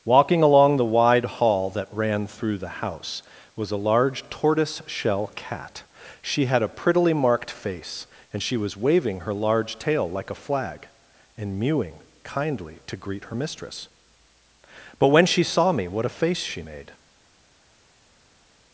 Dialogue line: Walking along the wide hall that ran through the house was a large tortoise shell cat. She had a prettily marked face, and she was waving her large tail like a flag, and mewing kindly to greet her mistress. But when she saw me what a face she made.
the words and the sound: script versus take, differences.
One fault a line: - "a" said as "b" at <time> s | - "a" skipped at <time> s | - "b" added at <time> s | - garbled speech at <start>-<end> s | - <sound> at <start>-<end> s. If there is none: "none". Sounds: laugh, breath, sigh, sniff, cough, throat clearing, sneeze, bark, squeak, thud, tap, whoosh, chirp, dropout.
none